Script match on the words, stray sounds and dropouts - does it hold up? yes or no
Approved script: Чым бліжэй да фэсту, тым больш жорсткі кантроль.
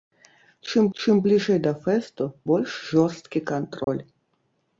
no